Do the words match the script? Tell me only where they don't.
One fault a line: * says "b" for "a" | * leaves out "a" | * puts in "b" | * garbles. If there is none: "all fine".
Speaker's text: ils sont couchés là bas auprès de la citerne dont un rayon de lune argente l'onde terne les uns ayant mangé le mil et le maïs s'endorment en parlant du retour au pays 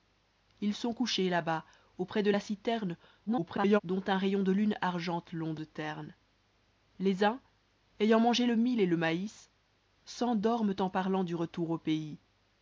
* garbles